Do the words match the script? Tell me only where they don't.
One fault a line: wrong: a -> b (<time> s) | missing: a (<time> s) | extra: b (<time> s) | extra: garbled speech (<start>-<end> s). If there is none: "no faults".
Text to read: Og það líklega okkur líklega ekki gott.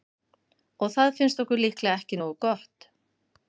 wrong: líklega -> finnst (1.2 s)
extra: nógu (2.2 s)